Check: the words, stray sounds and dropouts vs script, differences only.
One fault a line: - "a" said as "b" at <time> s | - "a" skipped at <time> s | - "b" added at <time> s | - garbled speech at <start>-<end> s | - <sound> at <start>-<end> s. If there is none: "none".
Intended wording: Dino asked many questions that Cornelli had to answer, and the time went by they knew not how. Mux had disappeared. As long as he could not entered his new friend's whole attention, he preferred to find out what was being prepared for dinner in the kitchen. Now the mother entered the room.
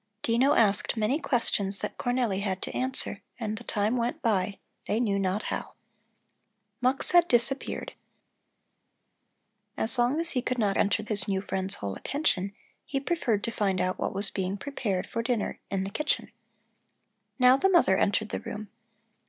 none